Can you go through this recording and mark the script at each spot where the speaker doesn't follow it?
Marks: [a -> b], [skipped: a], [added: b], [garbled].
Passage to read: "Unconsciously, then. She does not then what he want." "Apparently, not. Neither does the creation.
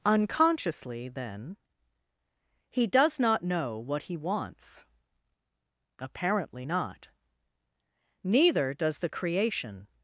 "Unconsciously, then. [She -> He] does not [then -> know] what he [want." -> wants] "Apparently, not. Neither does the creation.